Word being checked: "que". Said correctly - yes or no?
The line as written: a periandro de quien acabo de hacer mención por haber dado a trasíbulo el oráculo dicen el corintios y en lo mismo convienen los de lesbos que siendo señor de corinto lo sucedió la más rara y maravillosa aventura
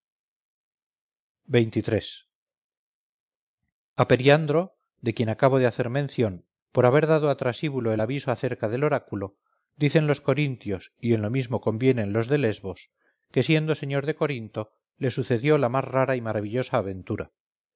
yes